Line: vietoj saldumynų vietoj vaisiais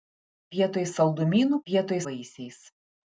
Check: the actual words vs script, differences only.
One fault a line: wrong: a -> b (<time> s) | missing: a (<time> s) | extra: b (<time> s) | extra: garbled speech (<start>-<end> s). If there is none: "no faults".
no faults